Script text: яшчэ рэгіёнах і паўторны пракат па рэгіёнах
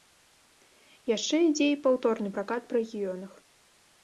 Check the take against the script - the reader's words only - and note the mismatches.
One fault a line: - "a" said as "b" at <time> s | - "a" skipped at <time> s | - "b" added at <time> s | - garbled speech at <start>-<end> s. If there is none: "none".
- "рэгіёнах" said as "ідзе" at 1.5 s